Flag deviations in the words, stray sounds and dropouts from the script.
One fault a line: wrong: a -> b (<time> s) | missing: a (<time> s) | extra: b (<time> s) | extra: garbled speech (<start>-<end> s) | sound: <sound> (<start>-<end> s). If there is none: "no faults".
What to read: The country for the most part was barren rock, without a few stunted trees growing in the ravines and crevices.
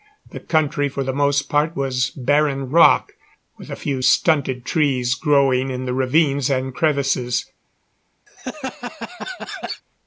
wrong: without -> with (3.6 s)
sound: laugh (8.3-9.8 s)